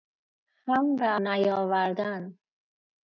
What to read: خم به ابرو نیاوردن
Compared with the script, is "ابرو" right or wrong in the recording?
wrong